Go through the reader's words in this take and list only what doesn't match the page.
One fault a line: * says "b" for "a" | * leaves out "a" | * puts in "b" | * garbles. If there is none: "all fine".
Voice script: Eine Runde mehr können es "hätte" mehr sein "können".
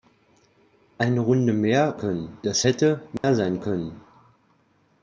all fine